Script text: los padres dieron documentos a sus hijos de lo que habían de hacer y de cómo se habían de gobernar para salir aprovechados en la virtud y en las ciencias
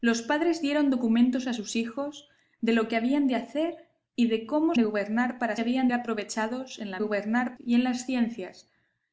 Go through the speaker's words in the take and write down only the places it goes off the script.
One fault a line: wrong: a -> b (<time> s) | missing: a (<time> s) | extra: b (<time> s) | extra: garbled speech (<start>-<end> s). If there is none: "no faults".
missing: se habían (4.7 s)
wrong: salir -> habían (5.6 s)
wrong: virtud -> gobernar (7.0 s)